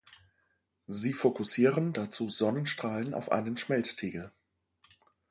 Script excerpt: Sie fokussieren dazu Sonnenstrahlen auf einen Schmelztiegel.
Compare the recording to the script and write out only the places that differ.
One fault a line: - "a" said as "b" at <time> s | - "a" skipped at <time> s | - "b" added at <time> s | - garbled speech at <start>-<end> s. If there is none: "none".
none